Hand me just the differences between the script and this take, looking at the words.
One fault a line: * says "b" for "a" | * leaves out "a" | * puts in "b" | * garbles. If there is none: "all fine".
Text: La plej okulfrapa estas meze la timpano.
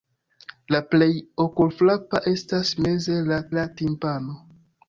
* puts in "la"